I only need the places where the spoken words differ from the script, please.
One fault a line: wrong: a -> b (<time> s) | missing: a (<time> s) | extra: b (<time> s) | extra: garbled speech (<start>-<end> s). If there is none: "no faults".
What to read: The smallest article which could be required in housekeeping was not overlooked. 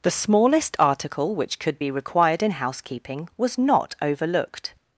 no faults